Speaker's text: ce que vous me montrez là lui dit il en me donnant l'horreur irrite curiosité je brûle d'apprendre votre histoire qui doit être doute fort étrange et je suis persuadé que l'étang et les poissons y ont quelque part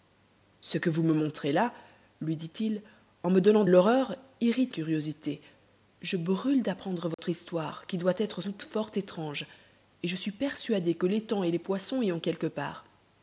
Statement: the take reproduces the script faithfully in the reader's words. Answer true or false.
true